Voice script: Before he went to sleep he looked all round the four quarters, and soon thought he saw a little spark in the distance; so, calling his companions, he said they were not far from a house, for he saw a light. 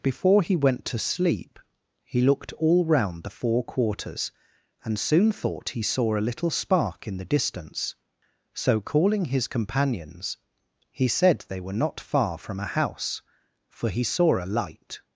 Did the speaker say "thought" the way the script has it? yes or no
yes